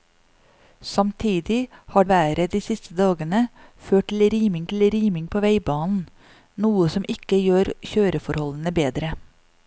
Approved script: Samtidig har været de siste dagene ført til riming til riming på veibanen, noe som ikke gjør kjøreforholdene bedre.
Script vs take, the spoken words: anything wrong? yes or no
no